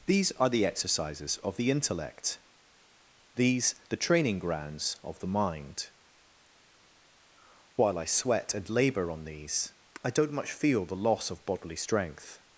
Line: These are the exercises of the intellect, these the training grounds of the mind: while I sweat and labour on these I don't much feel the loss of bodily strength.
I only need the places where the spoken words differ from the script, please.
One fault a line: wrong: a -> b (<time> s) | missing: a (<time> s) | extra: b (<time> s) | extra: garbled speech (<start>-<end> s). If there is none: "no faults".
no faults